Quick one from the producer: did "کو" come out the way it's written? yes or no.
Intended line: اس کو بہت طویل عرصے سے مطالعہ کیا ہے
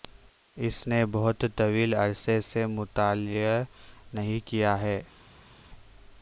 no